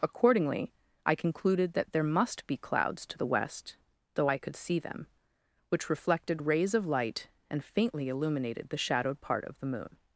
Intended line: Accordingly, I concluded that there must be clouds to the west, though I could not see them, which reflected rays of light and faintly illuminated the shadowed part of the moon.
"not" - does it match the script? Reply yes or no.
no